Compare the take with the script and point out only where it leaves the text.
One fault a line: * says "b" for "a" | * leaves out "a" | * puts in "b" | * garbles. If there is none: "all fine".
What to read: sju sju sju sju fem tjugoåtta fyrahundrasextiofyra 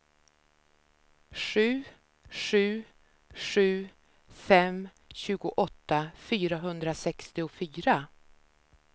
* leaves out "sju"